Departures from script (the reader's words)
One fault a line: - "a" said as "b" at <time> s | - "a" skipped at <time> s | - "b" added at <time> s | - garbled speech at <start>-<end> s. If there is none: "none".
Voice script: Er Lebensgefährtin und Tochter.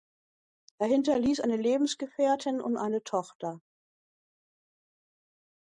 - "hinterließ eine" added at 0.9 s
- "eine" added at 2.8 s